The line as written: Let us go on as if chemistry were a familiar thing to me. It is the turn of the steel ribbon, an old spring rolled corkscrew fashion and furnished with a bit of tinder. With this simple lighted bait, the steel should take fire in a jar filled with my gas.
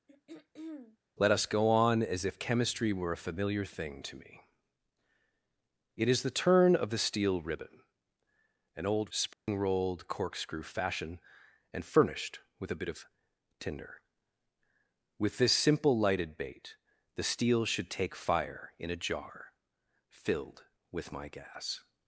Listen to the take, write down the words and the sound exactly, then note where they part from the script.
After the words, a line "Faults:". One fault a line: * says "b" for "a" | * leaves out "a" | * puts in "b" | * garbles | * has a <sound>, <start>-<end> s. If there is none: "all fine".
Let us go on as if chemistry were a familiar thing to me. It is the turn of the steel ribbon, an old spring rolled corkscrew fashion and furnished with a bit of tinder. With this simple lighted bait, the steel should take fire in a jar filled with my gas.
Faults:
* has a throat clearing, 0.1-1.0 s
* has a dropout, 9.3-9.5 s